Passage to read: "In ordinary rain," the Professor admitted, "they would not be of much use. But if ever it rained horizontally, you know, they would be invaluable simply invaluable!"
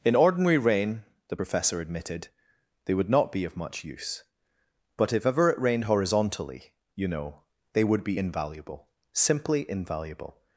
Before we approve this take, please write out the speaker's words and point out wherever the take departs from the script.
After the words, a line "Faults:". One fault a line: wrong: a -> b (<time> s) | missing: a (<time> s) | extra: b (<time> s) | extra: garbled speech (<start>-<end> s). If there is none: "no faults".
"In ordinary rain," the Professor admitted, "they would not be of much use. But if ever it rained horizontally, you know, they would be invaluable simply invaluable!"
Faults:
no faults